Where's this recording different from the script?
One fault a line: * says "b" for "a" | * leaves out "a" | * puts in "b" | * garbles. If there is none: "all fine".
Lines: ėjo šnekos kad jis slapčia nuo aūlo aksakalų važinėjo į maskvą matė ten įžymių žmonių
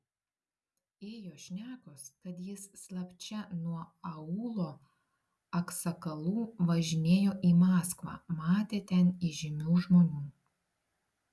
all fine